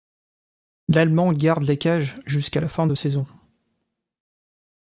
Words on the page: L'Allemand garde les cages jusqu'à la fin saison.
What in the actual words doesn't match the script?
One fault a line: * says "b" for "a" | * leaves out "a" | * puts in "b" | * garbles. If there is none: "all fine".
* puts in "de"